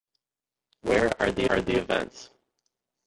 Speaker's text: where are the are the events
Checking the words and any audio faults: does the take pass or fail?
pass